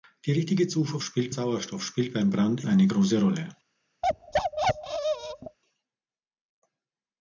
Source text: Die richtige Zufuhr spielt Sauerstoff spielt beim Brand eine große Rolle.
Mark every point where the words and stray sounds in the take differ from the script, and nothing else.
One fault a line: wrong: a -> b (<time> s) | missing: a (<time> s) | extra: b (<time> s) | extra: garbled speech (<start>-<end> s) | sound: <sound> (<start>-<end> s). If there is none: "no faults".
sound: bark (4.0-5.6 s)